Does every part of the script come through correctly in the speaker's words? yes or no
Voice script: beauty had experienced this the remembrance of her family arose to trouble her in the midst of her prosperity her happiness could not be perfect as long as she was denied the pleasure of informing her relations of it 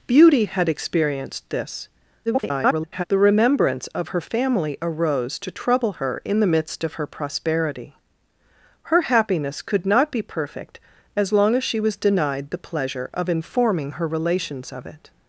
no